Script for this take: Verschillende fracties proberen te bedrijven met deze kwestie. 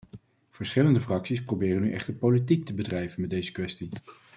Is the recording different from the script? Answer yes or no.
yes